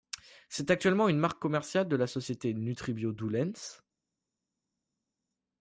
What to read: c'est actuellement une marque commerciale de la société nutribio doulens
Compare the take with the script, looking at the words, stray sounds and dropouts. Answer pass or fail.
pass